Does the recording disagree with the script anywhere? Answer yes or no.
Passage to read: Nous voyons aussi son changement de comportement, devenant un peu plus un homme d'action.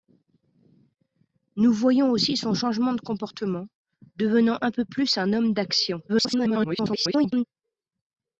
yes